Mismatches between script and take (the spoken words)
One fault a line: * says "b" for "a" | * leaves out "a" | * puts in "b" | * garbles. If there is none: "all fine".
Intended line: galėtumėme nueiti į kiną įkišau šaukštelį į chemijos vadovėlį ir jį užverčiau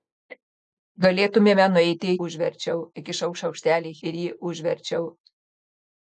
* says "užverčiau" for "kiną"
* leaves out "chemijos vadovėlį"